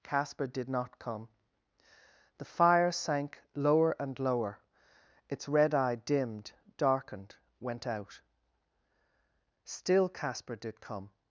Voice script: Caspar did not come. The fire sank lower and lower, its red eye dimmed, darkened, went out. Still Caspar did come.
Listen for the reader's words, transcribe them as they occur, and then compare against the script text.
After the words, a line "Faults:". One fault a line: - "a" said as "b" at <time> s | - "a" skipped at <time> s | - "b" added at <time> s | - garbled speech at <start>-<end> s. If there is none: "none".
Caspar did not come. The fire sank lower and lower, its red eye dimmed, darkened, went out. Still Caspar did come.
Faults:
none